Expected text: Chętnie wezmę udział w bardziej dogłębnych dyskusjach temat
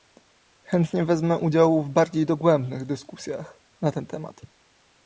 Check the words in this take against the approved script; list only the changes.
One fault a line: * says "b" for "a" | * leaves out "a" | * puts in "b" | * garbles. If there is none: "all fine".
* puts in "na ten"